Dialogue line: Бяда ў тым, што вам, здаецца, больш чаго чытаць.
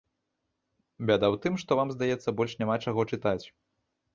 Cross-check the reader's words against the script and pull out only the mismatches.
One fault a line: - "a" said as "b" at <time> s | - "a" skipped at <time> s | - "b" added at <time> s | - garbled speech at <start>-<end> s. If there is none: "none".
- "няма" added at 2.6 s